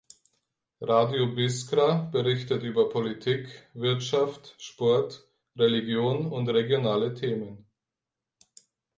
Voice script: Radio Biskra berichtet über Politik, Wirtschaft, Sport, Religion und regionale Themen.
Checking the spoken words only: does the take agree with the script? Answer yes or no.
yes